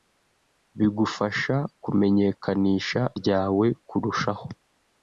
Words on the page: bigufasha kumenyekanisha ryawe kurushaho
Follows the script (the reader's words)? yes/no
yes